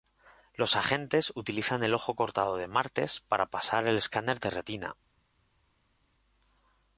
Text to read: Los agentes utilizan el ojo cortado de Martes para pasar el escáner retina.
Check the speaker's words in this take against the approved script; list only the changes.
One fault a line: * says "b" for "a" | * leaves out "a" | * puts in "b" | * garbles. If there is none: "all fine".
* puts in "de"